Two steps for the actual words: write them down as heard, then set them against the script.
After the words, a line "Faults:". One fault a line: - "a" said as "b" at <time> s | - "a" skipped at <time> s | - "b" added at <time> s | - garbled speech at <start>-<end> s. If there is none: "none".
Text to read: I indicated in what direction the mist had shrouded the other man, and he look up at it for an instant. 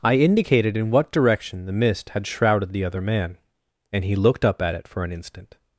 I indicated in what direction the mist had shrouded the other man, and he looked up at it for an instant.
Faults:
- "look" said as "looked" at 4.2 s